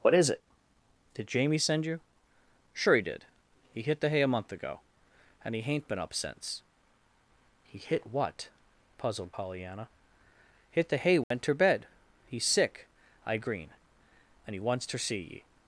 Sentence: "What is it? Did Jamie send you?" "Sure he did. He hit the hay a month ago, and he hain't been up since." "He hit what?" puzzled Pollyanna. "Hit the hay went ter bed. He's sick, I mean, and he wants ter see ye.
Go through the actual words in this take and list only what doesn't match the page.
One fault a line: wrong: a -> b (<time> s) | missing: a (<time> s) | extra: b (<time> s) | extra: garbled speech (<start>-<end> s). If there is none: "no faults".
wrong: mean -> green (13.4 s)